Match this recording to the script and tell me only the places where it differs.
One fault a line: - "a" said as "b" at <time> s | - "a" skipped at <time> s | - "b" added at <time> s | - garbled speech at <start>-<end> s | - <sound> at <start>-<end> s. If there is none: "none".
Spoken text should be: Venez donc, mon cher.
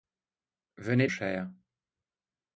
- "donc mon" skipped at 1.1 s